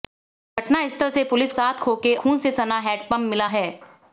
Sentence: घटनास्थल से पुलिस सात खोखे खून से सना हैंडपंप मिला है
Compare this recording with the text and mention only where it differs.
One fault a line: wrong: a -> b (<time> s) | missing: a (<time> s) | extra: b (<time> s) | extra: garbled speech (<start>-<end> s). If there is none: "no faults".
no faults